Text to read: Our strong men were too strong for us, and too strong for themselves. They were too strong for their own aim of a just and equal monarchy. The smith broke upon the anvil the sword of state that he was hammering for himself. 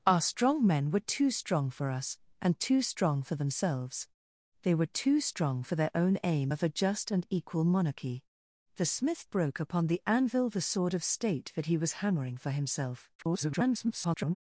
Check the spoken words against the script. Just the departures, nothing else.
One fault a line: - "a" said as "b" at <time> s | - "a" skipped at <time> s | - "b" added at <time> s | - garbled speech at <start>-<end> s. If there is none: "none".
- garbled speech at 13.2-14.4 s